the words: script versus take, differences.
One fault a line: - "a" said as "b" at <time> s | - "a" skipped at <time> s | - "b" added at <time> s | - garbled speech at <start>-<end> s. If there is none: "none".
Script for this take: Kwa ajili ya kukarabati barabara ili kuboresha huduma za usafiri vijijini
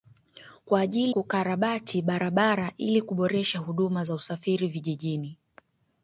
- "ya" skipped at 1.1 s